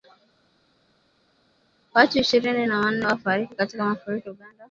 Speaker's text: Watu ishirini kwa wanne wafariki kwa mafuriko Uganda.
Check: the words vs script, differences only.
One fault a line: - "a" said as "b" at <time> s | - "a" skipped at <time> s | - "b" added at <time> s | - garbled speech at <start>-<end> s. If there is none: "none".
- "kwa" said as "na" at 2.6 s
- "kwa" said as "katika" at 3.5 s